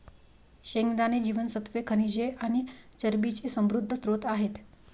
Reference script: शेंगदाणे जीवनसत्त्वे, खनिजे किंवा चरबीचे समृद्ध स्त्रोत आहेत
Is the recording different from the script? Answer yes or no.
yes